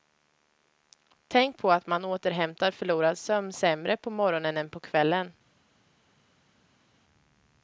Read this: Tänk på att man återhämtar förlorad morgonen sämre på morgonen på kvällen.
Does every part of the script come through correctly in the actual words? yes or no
no